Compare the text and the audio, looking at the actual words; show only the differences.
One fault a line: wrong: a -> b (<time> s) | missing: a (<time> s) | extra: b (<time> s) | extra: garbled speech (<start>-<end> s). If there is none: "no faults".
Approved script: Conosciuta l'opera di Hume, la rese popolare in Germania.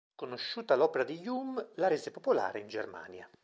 no faults